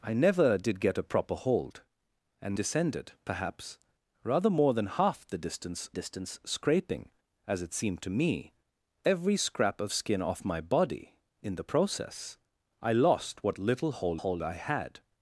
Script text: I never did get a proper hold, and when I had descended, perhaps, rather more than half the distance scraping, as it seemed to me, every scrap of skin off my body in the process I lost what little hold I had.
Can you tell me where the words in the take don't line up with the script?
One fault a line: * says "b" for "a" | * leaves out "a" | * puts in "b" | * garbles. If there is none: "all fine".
* leaves out "when I had"
* puts in "distance"
* puts in "hold"